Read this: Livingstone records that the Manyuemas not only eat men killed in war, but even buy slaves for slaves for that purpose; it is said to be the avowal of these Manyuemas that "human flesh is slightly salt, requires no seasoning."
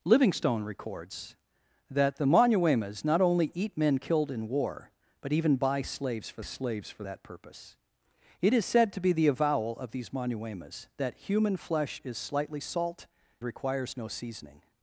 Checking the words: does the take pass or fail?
pass